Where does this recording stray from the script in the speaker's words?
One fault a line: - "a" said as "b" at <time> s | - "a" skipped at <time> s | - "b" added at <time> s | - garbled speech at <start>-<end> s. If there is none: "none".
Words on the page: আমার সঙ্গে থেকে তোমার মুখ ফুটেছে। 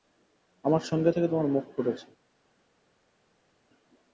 none